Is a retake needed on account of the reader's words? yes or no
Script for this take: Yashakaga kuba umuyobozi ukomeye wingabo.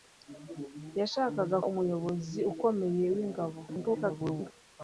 yes